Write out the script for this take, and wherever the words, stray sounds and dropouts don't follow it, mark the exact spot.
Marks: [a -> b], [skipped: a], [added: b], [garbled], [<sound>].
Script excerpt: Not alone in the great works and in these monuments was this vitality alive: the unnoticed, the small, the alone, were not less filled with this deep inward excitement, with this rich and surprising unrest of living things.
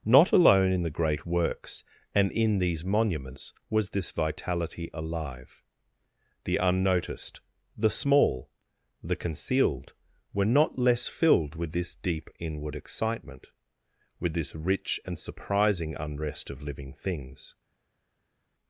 Not alone in the great works and in these monuments was this vitality alive: the unnoticed, the small, the [alone, -> concealed] were not less filled with this deep inward excitement, with this rich and surprising unrest of living things.